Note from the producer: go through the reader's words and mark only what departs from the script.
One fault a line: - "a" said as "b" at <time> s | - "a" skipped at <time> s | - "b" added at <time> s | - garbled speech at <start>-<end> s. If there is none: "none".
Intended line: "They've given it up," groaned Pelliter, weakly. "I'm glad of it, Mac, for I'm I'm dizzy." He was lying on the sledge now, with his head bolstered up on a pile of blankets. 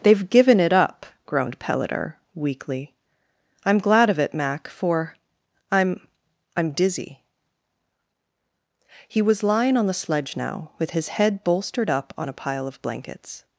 none